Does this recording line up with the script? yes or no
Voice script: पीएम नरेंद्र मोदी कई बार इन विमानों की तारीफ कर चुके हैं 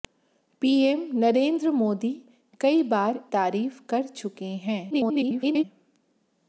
no